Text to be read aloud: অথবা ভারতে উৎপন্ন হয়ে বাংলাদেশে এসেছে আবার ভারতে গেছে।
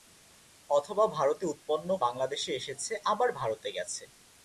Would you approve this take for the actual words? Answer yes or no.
no